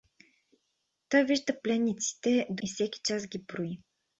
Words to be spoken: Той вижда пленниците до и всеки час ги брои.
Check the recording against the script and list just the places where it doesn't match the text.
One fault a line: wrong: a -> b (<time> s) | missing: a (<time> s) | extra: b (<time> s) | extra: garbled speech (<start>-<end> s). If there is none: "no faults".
no faults